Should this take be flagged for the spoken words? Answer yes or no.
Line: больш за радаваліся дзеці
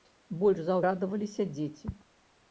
no